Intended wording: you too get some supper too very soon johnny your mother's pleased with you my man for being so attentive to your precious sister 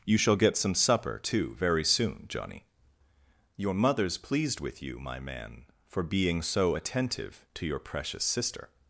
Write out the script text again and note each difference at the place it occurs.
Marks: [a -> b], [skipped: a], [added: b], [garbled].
you [too -> shall] get some supper too very soon johnny your mother's pleased with you my man for being so attentive to your precious sister